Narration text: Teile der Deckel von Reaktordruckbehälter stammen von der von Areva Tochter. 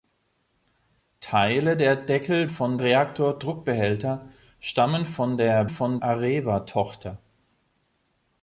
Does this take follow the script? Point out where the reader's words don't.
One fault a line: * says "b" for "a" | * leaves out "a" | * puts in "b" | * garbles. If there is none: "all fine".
all fine